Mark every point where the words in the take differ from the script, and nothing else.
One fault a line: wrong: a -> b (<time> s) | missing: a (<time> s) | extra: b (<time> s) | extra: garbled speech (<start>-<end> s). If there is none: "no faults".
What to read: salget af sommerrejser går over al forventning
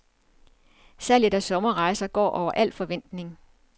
no faults